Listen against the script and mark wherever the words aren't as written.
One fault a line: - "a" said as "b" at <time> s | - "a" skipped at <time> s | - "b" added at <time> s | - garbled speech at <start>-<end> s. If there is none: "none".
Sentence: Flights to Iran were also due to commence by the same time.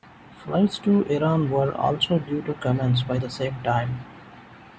none